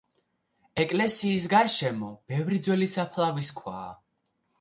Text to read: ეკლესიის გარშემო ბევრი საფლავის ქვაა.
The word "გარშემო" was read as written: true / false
true